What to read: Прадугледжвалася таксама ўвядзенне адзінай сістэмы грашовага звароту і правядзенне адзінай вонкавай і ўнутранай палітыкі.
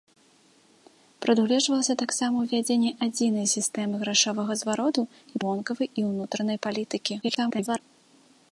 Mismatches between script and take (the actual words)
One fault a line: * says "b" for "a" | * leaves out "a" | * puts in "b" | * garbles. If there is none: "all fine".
* leaves out "правядзенне адзінай"
* garbles